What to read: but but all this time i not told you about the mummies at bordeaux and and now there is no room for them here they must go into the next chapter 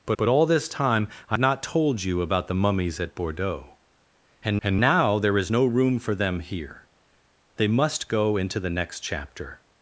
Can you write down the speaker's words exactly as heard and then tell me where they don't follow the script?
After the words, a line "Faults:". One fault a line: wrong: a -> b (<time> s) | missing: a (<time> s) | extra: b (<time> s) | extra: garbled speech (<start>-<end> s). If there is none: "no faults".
but but all this time i not told you about the mummies at bordeaux and and now there is no room for them here they must go into the next chapter
Faults:
no faults